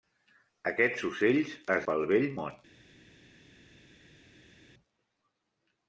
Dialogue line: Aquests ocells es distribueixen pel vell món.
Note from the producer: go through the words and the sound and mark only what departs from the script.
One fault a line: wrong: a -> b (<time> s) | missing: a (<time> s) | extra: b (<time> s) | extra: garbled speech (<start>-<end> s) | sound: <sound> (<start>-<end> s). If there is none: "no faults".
missing: distribueixen (1.9 s)